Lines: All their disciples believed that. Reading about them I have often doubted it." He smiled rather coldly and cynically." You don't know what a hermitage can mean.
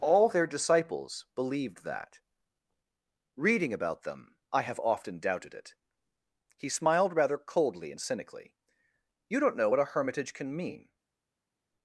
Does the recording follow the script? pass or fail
pass